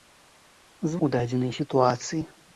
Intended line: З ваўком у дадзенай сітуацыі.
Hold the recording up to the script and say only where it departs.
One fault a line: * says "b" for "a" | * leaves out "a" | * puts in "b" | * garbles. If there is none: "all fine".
* leaves out "ваўком"